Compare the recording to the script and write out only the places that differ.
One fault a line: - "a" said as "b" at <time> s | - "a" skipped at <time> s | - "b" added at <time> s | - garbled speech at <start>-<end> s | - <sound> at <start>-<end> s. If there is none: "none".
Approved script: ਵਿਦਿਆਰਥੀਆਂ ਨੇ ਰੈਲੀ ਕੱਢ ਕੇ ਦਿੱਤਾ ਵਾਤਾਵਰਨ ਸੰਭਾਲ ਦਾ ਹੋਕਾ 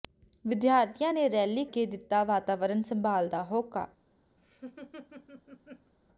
- "ਕੱਢ" skipped at 1.6 s
- laugh at 4.4-5.9 s